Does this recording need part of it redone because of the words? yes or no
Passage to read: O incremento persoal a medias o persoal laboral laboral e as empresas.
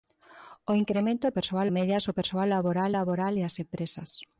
no